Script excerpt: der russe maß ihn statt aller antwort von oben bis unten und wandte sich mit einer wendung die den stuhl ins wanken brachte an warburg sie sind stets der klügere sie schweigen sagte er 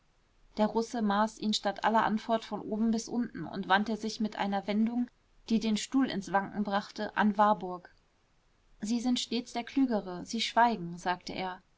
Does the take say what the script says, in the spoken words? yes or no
yes